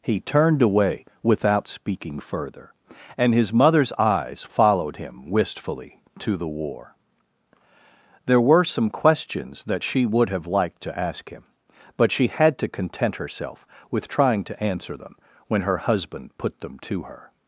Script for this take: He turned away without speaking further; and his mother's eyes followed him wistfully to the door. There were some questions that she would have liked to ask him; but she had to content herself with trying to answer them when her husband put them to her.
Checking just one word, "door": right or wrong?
wrong